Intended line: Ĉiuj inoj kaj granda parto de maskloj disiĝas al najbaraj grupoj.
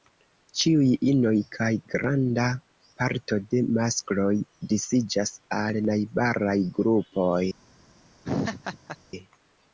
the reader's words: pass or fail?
pass